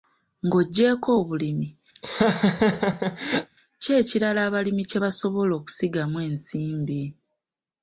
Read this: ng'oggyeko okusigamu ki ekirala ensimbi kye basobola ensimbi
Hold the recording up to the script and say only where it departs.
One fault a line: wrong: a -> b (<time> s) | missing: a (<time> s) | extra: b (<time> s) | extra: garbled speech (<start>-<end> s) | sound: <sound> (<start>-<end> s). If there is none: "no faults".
wrong: okusigamu -> obulimi (1.2 s)
sound: laugh (1.9-3.5 s)
wrong: ensimbi -> abalimi (4.5 s)
extra: okusigamu (5.6 s)